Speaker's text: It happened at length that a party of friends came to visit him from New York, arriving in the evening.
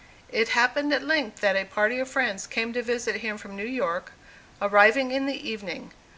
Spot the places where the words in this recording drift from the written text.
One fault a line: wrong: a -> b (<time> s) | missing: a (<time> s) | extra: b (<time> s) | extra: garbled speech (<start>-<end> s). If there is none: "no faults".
no faults